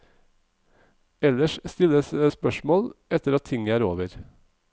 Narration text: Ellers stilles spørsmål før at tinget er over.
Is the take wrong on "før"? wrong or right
wrong